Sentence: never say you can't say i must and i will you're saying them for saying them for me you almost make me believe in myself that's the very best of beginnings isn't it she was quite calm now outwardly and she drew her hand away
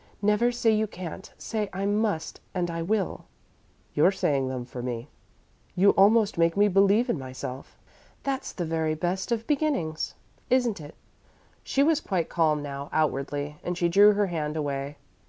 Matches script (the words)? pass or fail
fail